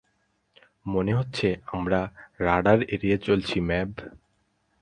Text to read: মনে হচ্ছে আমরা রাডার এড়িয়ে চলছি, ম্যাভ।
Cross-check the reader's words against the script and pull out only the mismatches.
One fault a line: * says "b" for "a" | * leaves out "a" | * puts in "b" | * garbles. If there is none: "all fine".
all fine